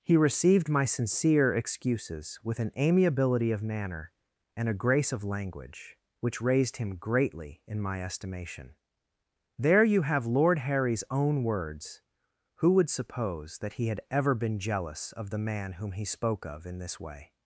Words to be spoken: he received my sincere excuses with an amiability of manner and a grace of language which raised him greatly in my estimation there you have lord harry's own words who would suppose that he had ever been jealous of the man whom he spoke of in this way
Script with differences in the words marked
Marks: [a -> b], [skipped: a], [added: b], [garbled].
he received my sincere excuses with an amiability of manner and a grace of language which raised him greatly in my estimation there you have lord harry's own words who would suppose that he had ever been jealous of the man whom he spoke of in this way